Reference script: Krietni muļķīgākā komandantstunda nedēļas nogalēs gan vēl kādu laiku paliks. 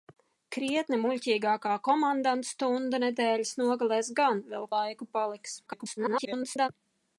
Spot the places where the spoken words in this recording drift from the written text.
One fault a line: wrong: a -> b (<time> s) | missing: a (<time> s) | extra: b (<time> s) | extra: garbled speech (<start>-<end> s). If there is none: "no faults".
missing: kādu (4.7 s)
extra: garbled speech (5.7-6.7 s)